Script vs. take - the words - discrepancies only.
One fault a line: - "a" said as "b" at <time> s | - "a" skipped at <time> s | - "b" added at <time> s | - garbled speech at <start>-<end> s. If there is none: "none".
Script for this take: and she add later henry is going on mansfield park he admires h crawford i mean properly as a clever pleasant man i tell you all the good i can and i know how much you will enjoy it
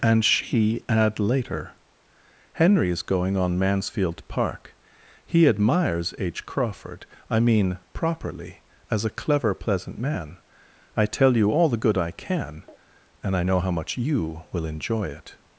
none